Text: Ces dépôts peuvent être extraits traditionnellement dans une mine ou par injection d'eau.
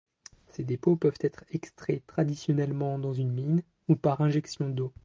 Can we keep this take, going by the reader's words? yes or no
yes